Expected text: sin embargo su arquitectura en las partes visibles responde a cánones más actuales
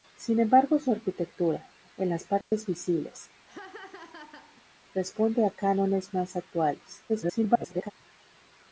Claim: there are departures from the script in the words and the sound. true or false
true